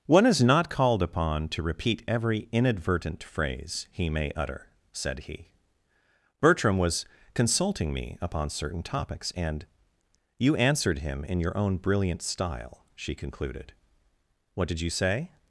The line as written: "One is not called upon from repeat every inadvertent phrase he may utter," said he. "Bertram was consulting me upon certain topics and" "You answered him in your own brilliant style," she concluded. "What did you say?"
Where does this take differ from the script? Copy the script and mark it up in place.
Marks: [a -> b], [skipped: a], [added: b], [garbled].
"One is not called upon [from -> to] repeat every inadvertent phrase he may utter," said he. "Bertram was consulting me upon certain topics and" "You answered him in your own brilliant style," she concluded. "What did you say?"